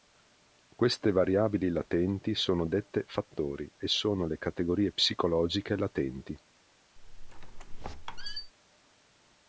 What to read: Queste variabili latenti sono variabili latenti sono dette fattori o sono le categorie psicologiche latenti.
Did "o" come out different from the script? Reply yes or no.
yes